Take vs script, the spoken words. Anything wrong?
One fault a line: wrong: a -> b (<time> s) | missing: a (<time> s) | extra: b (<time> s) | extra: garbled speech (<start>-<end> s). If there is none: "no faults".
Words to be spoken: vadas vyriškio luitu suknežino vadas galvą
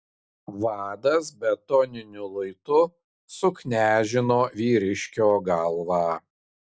wrong: vyriškio -> betoniniu (1.4 s)
wrong: vadas -> vyriškio (4.6 s)